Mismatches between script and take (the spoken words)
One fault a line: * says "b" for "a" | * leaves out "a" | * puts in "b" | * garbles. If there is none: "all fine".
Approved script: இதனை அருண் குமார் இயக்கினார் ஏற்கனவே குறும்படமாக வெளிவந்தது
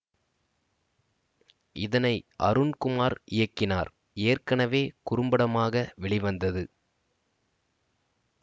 all fine